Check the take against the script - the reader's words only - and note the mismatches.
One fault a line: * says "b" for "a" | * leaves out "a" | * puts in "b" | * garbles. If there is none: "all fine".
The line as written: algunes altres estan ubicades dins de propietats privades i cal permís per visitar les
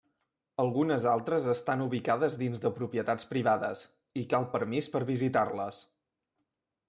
all fine